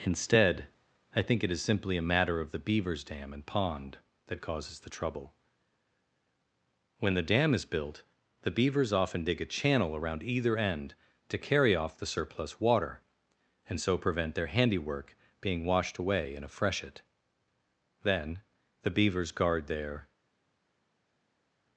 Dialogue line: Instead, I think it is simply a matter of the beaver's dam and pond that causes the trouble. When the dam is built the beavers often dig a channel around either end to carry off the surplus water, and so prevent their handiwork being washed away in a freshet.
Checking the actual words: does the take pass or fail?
fail